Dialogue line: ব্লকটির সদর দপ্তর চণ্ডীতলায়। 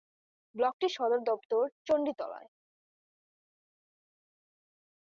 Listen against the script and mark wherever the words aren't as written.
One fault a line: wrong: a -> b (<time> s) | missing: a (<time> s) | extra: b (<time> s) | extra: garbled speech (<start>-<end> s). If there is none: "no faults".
no faults